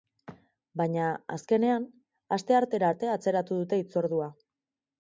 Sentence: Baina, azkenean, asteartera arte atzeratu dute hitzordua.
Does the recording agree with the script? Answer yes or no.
yes